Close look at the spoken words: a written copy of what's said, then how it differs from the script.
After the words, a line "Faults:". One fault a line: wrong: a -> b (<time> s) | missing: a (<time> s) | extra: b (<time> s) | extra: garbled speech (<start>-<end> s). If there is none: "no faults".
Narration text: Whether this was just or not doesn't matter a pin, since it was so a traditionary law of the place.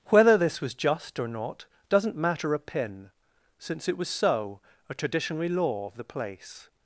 Whether this was just or not doesn't matter a pin, since it was so a traditionary law of the place.
Faults:
no faults